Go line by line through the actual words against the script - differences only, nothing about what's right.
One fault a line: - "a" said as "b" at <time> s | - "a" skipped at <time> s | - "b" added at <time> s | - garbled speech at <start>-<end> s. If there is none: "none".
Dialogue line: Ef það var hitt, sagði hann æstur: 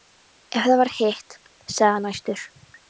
none